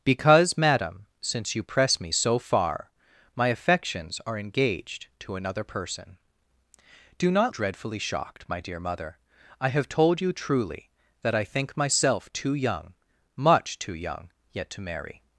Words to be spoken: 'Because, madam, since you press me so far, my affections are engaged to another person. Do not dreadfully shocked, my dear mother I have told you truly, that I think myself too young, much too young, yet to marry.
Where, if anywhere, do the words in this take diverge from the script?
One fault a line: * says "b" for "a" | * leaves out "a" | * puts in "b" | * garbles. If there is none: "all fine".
all fine